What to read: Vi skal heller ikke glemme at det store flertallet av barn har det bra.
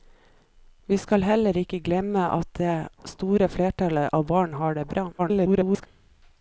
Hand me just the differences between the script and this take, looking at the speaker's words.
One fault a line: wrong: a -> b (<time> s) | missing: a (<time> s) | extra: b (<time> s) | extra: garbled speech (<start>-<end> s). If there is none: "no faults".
extra: garbled speech (5.2-5.9 s)